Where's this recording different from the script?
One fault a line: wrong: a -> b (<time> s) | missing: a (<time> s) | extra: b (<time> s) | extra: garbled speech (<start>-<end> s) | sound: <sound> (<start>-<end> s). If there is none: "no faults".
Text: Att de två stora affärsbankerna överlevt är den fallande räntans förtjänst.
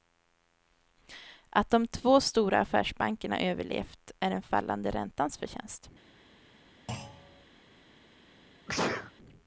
sound: thud (6.9-7.5 s)
sound: sneeze (8.7-9.1 s)